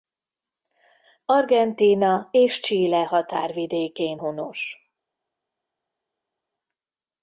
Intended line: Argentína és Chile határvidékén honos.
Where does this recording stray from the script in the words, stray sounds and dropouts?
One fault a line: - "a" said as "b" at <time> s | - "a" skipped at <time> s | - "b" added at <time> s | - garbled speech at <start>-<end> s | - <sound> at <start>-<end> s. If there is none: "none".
none